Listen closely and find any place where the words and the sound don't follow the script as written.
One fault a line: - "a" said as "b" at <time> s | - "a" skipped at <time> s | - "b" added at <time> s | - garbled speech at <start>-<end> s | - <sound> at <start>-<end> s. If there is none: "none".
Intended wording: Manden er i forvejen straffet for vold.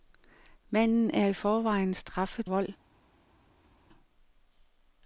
- "for" skipped at 2.5 s